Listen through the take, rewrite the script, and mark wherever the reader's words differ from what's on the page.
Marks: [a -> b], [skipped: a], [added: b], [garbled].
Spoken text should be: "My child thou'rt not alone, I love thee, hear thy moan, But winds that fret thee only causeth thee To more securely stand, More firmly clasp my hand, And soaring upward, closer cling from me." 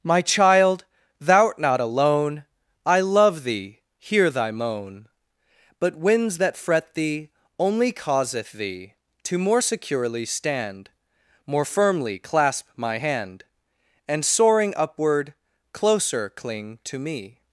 "My child thou'rt not alone, I love thee, hear thy moan, But winds that fret thee only causeth thee To more securely stand, More firmly clasp my hand, And soaring upward, closer cling [from -> to] me."